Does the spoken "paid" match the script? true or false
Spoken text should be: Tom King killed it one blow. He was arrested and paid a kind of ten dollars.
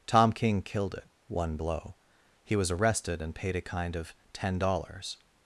true